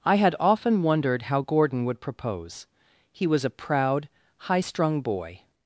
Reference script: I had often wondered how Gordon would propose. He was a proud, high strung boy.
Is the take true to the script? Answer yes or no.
yes